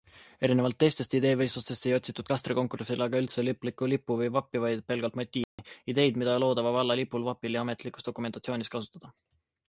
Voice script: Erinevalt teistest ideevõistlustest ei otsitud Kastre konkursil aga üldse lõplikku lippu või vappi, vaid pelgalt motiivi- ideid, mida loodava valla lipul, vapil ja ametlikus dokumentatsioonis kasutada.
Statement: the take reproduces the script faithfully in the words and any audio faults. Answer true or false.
false